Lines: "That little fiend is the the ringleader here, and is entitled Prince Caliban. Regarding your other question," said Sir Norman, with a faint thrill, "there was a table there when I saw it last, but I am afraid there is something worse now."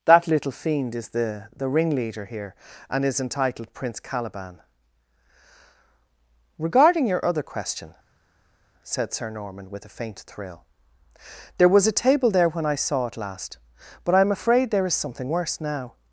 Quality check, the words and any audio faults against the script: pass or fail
pass